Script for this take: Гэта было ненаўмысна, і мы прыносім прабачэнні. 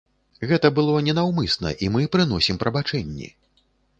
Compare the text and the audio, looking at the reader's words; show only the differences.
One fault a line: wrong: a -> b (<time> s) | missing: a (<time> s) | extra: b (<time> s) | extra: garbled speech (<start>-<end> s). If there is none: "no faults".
no faults